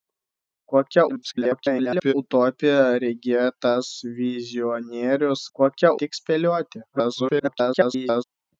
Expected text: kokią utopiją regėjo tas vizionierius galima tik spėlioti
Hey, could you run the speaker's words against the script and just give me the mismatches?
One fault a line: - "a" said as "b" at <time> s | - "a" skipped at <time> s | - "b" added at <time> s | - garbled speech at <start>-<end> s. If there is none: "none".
- garbled speech at 1.1-2.1 s
- "galima" said as "kokią" at 5.6 s
- garbled speech at 6.9-8.2 s